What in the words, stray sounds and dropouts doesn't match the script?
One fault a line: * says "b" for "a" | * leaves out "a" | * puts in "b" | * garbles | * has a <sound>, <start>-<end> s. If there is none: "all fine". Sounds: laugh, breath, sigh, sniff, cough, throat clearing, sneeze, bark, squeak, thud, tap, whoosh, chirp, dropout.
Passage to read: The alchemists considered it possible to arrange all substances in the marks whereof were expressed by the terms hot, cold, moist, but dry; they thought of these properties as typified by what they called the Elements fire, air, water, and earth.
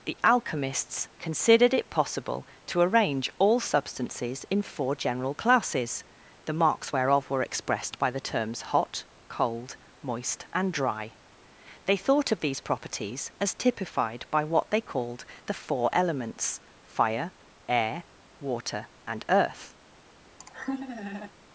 * puts in "four general classes"
* says "and" for "but"
* puts in "four"
* has a laugh, 20.4-21.3 s